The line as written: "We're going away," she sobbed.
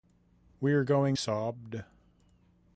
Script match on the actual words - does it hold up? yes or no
no